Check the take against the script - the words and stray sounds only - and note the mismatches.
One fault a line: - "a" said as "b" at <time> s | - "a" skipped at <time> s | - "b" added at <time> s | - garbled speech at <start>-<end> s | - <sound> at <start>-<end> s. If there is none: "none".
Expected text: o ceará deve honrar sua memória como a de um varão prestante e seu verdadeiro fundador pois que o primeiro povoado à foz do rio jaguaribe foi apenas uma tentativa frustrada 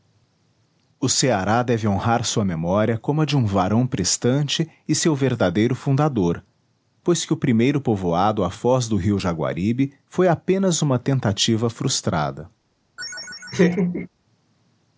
- laugh at 13.0-14.1 s